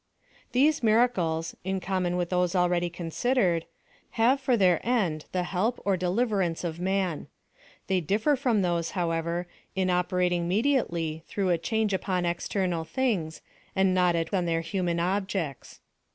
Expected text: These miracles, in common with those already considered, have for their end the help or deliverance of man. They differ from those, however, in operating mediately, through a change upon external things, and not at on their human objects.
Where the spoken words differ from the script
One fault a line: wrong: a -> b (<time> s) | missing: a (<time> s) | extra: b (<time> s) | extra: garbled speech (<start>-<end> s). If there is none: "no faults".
no faults